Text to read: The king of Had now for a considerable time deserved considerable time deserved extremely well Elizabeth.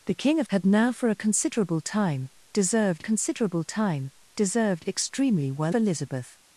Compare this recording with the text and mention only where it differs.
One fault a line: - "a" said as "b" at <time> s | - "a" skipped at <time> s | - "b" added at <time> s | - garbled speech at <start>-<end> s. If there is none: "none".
none